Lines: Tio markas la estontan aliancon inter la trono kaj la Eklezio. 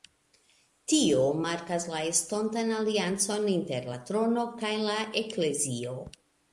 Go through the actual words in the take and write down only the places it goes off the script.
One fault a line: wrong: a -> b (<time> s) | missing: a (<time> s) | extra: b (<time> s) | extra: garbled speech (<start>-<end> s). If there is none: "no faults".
no faults